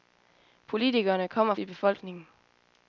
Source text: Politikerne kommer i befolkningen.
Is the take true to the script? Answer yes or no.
yes